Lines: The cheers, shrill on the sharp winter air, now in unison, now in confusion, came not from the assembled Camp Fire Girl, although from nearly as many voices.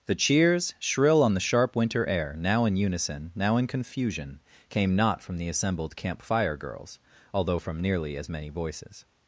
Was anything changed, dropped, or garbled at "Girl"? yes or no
yes